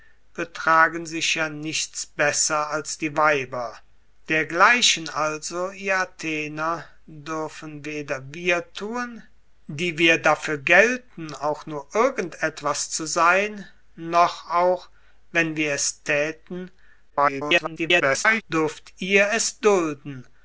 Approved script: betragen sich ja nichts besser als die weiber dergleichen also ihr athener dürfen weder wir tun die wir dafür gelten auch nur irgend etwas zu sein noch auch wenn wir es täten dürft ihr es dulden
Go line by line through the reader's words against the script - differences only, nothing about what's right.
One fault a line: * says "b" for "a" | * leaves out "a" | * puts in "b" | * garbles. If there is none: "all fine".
* garbles